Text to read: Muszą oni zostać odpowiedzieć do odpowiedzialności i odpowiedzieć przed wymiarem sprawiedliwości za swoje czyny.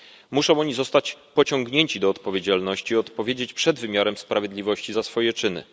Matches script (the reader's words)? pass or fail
fail